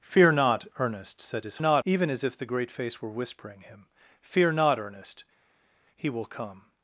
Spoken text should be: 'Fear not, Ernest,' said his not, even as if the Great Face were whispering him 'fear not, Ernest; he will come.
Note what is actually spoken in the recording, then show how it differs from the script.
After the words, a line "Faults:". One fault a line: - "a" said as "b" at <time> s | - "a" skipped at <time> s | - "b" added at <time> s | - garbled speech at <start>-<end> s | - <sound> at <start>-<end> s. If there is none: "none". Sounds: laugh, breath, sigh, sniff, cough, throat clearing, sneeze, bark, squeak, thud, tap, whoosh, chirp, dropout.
'Fear not, Ernest,' said his not, even as if the Great Face were whispering him 'fear not, Ernest; he will come.
Faults:
none